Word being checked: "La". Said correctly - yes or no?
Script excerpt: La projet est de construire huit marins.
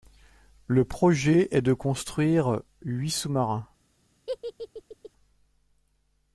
no